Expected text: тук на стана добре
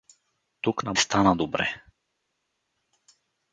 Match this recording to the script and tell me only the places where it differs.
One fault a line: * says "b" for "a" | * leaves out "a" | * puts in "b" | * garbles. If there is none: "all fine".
all fine